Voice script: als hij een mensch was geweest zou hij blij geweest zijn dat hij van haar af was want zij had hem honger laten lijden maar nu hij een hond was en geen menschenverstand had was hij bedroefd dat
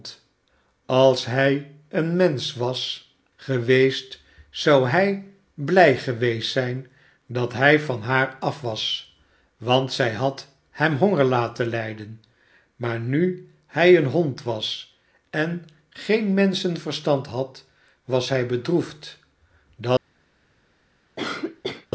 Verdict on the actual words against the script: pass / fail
pass